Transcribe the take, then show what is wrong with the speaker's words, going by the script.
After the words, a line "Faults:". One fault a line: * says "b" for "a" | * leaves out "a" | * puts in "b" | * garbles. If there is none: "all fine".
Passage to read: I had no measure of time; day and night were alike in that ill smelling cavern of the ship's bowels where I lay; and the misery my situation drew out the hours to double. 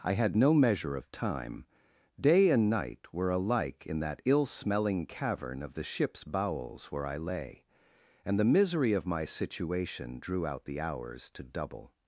I had no measure of time; day and night were alike in that ill smelling cavern of the ship's bowels where I lay; and the misery of my situation drew out the hours to double.
Faults:
* puts in "of"